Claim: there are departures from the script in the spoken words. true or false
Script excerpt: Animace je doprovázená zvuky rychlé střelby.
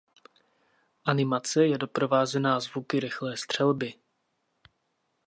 false